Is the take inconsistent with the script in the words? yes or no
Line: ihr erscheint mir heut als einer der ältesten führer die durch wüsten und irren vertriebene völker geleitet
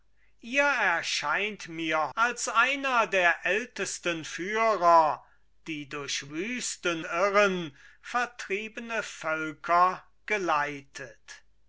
yes